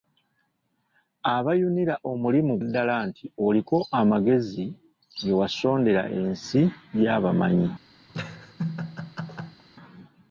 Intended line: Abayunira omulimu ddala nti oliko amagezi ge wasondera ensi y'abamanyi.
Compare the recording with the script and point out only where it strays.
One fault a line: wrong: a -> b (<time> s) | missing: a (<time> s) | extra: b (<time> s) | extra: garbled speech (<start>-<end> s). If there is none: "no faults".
no faults